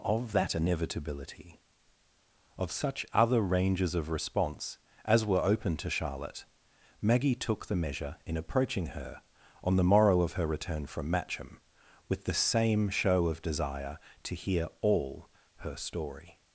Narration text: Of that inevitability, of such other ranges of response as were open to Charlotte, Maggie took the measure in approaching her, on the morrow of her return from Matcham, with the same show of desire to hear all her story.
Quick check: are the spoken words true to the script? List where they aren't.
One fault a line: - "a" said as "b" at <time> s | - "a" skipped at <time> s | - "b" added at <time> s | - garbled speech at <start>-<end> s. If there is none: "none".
none